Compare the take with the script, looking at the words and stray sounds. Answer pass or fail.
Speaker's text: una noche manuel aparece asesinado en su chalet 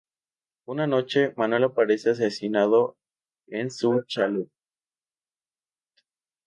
pass